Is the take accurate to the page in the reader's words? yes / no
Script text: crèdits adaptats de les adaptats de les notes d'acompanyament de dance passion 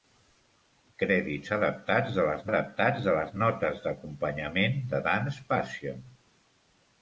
yes